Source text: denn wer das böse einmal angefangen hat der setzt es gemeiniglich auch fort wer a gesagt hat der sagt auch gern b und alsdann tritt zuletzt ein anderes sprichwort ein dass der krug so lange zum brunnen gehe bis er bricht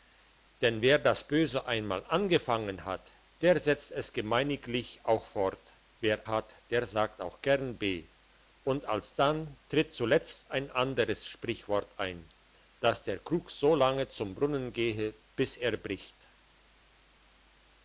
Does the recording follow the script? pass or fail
fail